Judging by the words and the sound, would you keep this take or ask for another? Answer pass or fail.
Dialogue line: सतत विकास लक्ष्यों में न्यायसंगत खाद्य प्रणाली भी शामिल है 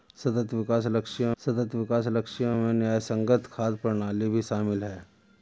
fail